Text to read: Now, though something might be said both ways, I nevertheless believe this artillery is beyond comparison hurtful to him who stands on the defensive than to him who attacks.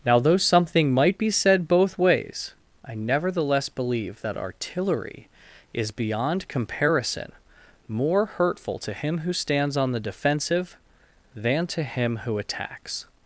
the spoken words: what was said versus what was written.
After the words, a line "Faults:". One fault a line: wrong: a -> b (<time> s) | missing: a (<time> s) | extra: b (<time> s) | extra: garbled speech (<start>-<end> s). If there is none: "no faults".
Now, though something might be said both ways, I nevertheless believe that artillery is beyond comparison more hurtful to him who stands on the defensive than to him who attacks.
Faults:
wrong: this -> that (4.2 s)
extra: more (7.9 s)